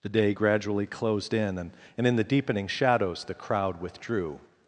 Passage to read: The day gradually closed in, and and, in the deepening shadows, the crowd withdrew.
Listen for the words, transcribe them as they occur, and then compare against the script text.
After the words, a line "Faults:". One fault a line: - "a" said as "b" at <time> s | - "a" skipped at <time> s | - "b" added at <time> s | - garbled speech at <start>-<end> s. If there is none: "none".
The day gradually closed in, and and, in the deepening shadows, the crowd withdrew.
Faults:
none